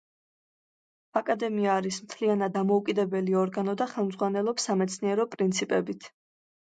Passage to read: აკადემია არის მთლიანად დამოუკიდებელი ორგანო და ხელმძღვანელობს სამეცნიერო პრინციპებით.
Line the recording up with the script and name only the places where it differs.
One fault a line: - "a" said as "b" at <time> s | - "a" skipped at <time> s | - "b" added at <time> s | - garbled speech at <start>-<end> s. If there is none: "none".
none